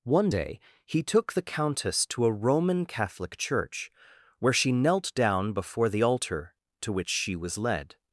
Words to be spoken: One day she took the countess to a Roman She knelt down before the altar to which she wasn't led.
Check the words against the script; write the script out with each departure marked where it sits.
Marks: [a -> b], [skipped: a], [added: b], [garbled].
One day [she -> he] took the countess to a Roman [added: Catholic church where] She knelt down before the altar to which she [wasn't -> was] led.